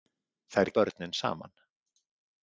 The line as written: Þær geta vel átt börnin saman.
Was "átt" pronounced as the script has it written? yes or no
no